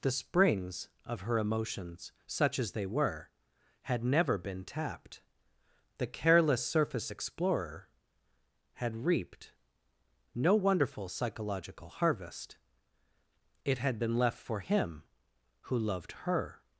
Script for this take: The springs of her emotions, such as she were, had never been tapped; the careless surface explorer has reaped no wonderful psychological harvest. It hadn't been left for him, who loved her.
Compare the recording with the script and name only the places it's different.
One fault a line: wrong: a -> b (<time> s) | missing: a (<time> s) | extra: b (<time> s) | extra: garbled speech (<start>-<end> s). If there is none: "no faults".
wrong: she -> they (2.7 s)
wrong: has -> had (8.7 s)
wrong: hadn't -> had (13.8 s)